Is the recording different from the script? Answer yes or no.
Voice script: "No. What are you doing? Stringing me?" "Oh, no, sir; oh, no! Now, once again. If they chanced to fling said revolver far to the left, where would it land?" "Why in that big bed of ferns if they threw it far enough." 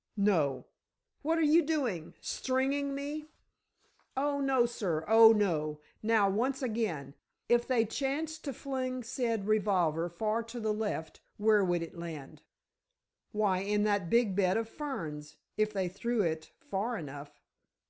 no